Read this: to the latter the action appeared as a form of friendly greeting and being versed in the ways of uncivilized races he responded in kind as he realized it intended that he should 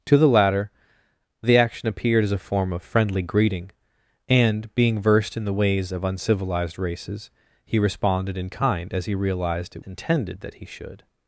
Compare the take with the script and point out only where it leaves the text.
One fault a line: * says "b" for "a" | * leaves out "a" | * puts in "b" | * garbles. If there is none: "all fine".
all fine